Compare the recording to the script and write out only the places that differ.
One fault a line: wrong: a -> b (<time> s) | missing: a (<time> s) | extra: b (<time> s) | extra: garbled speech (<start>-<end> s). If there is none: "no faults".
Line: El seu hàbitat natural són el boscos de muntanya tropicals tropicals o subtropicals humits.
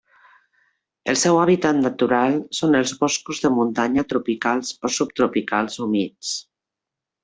wrong: el -> els (2.8 s)
missing: tropicals (4.8 s)